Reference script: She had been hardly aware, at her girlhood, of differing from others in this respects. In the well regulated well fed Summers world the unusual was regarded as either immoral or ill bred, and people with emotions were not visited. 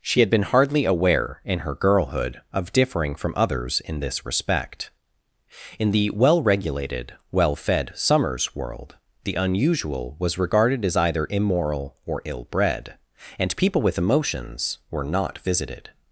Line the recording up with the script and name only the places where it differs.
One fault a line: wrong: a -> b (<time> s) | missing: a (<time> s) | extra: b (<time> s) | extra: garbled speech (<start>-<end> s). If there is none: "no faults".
wrong: at -> in (1.4 s)
wrong: respects -> respect (4.2 s)